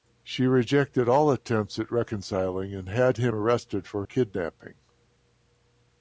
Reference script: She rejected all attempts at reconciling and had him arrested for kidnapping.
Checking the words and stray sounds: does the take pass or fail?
pass